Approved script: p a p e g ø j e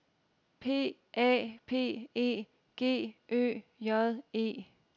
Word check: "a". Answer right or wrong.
right